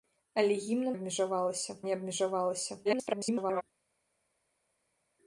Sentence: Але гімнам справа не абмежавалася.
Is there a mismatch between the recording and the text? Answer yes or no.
yes